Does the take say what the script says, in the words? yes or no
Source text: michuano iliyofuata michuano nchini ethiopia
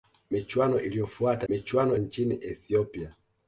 yes